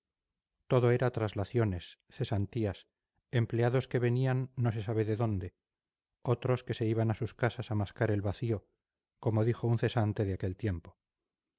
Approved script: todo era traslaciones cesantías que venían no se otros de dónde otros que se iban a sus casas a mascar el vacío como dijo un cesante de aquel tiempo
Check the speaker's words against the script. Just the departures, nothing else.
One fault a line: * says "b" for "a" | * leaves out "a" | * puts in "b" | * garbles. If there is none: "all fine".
* puts in "empleados"
* says "sabe" for "otros"